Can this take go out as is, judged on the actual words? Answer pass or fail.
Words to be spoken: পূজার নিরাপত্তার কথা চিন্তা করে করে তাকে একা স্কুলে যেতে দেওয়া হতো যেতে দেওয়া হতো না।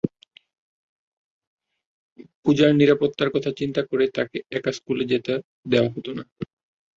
fail